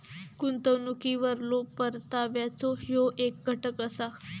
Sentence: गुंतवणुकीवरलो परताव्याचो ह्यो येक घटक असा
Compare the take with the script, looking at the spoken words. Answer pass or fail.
pass